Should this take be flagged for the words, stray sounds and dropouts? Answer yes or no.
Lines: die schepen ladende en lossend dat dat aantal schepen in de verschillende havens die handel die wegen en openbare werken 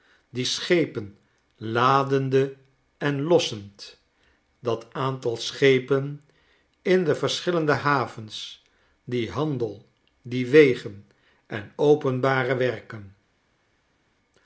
yes